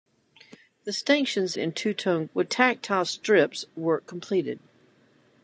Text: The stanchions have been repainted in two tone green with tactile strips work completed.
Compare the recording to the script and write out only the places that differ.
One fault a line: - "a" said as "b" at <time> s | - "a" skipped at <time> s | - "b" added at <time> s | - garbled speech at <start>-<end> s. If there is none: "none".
- "have been repainted" skipped at 1.5 s
- "green" skipped at 2.3 s